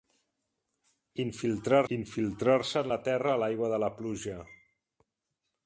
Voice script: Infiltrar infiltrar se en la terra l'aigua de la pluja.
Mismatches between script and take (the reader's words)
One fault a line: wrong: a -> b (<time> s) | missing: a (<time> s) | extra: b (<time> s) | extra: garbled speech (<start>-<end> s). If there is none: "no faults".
no faults